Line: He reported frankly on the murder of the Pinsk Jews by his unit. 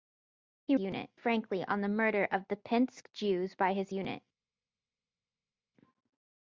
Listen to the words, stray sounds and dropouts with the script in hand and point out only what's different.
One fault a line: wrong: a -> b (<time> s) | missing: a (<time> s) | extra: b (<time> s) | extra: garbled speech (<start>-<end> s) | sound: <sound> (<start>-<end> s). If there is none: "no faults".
wrong: reported -> unit (0.8 s)